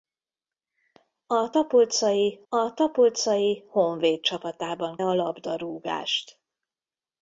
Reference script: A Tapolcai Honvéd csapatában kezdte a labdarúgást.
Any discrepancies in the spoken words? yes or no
yes